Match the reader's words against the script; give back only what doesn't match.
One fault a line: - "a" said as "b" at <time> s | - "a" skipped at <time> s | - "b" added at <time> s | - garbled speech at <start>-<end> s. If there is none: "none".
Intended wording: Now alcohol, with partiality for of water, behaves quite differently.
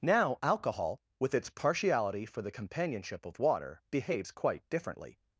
- "its" added at 1.3 s
- "the companionship" added at 2.4 s